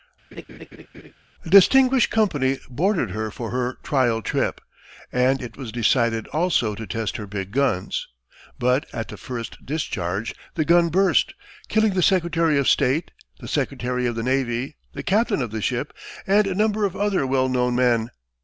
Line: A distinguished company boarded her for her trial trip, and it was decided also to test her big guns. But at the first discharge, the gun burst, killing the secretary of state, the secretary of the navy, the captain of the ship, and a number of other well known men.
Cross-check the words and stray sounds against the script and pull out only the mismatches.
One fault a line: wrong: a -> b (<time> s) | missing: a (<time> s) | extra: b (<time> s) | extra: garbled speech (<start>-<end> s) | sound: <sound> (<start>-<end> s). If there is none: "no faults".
sound: laugh (0.3-1.1 s)